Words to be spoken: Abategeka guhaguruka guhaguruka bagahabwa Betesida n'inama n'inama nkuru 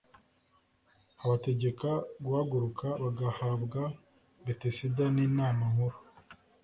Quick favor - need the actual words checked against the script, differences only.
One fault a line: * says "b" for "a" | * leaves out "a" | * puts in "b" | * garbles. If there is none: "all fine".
* leaves out "guhaguruka"
* leaves out "n'inama"